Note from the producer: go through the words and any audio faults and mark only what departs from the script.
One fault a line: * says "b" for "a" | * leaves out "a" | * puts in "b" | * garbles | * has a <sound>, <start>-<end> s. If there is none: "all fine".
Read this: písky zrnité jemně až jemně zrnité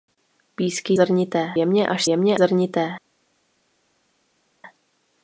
all fine